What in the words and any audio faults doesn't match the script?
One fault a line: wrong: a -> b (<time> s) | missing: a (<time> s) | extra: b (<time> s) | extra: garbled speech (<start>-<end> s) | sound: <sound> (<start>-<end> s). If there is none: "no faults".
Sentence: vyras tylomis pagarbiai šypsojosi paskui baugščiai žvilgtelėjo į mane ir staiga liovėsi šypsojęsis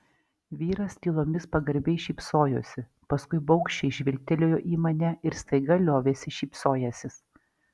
no faults